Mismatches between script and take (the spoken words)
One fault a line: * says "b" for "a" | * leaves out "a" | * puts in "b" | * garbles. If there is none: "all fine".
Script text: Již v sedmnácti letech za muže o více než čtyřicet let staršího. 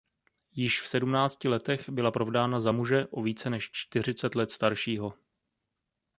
* puts in "byla provdána"